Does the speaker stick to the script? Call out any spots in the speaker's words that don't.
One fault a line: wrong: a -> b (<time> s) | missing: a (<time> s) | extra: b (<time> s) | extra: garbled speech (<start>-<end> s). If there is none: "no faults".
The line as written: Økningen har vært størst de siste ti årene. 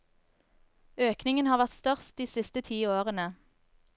no faults